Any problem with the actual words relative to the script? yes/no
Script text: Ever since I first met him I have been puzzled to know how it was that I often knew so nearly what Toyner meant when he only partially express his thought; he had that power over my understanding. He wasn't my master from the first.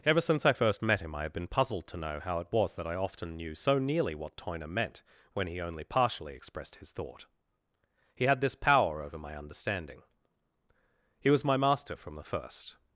yes